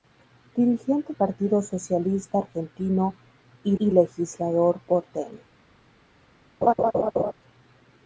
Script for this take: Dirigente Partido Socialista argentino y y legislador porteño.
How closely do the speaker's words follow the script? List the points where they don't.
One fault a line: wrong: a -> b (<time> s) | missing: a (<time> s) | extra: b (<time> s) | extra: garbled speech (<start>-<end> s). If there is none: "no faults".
no faults